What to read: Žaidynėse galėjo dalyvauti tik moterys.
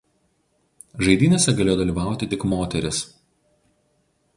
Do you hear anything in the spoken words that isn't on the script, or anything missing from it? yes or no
no